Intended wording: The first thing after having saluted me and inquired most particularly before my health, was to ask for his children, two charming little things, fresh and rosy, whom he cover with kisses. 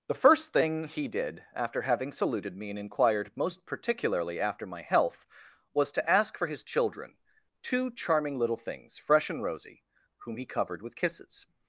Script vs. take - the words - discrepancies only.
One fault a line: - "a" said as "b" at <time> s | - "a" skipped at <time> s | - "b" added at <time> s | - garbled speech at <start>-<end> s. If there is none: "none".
- "he did" added at 0.8 s
- "before" said as "after" at 4.4 s
- "cover" said as "covered" at 10.5 s